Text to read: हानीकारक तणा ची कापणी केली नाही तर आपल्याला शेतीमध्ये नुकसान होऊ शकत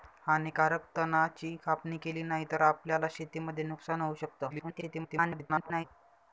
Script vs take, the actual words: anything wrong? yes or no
yes